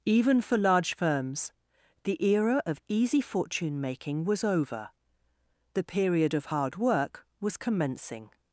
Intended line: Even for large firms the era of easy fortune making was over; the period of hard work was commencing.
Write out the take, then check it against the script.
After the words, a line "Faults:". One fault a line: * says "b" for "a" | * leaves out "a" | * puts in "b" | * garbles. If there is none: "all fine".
Even for large firms the era of easy fortune making was over; the period of hard work was commencing.
Faults:
all fine